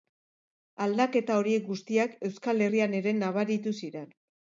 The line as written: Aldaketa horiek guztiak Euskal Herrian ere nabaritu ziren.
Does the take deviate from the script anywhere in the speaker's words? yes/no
no